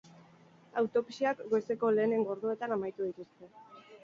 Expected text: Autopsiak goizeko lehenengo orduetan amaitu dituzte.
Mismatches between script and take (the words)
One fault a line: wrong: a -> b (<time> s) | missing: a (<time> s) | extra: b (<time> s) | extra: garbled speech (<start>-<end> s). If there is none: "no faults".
no faults